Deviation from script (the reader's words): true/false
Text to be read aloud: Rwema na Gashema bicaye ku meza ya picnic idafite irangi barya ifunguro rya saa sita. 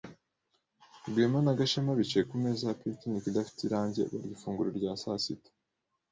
false